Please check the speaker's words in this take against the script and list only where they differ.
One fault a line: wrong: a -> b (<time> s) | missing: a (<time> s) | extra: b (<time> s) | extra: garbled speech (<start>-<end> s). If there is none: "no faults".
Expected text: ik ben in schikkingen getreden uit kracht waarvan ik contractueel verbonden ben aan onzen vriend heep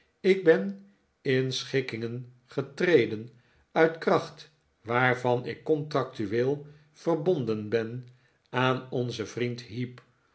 no faults